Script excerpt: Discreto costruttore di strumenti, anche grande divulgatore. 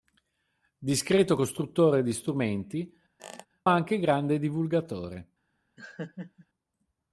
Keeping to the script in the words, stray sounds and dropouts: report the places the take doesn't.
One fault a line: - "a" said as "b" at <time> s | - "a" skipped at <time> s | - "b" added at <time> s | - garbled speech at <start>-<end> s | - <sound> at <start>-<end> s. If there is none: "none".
- squeak at 3.2-3.5 s
- laugh at 5.8-6.5 s